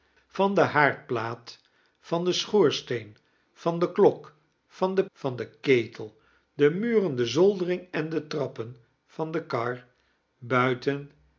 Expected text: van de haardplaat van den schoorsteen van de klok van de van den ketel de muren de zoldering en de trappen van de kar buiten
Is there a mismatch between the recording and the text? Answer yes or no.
no